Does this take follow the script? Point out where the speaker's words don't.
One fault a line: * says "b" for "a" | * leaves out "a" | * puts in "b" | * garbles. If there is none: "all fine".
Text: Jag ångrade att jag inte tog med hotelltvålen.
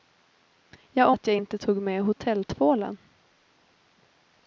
* leaves out "ångrade"